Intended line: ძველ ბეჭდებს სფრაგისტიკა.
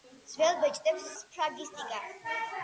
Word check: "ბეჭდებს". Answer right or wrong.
right